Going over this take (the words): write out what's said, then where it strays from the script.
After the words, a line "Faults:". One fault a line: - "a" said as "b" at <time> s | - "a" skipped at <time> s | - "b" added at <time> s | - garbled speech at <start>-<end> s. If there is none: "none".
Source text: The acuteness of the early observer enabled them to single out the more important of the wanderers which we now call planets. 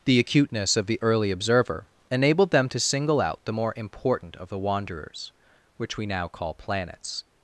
The acuteness of the early observer enabled them to single out the more important of the wanderers which we now call planets.
Faults:
none